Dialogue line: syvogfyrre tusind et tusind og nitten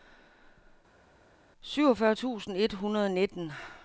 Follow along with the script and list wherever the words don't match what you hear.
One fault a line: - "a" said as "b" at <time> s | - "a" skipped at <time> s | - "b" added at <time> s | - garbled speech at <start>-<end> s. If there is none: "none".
- "tusind" said as "hundrede" at 2.7 s